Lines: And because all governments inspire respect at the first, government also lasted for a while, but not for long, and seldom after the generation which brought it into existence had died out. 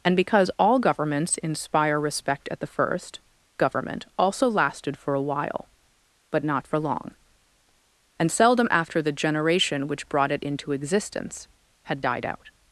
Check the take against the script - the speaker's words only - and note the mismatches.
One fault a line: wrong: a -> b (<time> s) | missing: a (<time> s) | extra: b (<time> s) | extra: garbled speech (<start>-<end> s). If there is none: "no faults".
no faults